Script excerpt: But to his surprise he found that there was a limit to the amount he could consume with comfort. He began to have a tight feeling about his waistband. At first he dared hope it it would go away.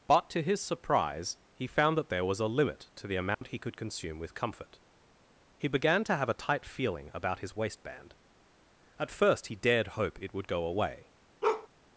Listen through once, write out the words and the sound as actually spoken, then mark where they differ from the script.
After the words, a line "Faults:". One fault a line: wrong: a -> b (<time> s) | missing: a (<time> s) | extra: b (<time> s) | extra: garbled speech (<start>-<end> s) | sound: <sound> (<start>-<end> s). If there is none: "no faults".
But to his surprise he found that there was a limit to the amount he could consume with comfort. He began to have a tight feeling about his waistband. At first he dared hope it would go away.
Faults:
sound: dropout (3.3-3.4 s)
missing: it (10.3 s)
sound: bark (11.4-11.7 s)